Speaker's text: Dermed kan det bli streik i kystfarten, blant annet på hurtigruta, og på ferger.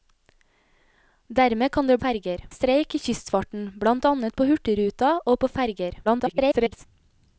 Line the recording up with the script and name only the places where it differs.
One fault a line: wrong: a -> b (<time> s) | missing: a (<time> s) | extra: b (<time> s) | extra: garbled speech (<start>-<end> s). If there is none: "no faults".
wrong: bli -> ferger (2.0 s)
extra: garbled speech (6.0-6.9 s)